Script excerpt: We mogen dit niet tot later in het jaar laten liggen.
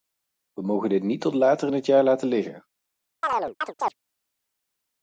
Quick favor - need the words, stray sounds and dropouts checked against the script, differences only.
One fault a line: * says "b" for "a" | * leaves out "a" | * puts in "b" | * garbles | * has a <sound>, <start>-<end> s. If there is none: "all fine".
* has a chirp, 3.2-3.9 s